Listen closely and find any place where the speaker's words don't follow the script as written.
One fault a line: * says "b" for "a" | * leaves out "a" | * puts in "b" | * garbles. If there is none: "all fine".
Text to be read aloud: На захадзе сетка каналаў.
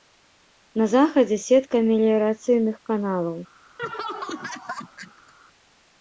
* puts in "меліярацыйных"